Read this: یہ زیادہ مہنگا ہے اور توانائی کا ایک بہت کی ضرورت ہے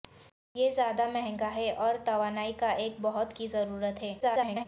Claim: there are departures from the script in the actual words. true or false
true